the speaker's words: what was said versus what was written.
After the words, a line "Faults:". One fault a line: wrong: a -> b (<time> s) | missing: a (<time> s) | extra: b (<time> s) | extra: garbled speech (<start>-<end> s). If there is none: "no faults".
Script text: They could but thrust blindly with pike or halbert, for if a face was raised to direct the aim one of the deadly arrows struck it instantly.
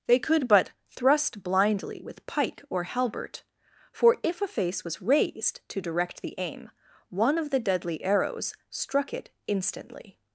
They could but thrust blindly with pike or halbert, for if a face was raised to direct the aim one of the deadly arrows struck it instantly.
Faults:
no faults